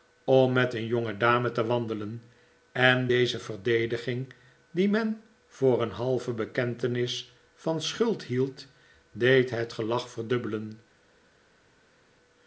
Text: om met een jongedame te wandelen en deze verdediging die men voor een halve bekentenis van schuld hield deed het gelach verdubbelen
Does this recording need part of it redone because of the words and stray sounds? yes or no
no